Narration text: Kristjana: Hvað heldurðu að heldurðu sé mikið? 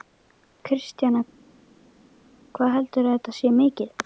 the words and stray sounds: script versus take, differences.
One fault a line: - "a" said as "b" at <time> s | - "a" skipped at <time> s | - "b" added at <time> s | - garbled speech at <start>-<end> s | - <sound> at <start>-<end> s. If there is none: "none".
- "heldurðu" said as "þetta" at 3.2 s